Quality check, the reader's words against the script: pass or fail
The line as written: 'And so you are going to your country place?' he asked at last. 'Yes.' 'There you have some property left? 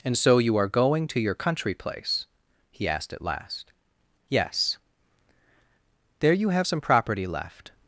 pass